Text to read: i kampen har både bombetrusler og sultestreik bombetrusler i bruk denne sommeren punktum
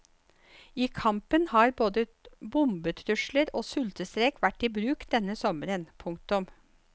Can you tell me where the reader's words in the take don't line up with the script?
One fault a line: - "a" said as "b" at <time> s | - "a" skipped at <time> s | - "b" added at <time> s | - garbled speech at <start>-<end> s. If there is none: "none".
- "bombetrusler" said as "vært" at 4.4 s